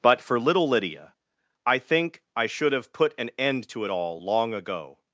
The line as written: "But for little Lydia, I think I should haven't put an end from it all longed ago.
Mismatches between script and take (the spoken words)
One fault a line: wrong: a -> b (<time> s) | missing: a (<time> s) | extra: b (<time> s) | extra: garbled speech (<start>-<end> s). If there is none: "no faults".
wrong: haven't -> have (2.7 s)
wrong: from -> to (3.7 s)
wrong: longed -> long (4.2 s)